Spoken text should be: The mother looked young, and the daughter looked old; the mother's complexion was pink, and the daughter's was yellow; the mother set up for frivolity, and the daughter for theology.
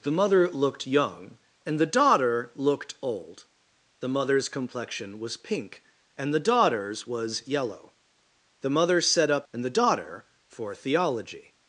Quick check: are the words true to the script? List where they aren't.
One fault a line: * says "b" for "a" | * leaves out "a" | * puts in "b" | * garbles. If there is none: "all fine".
* leaves out "for frivolity"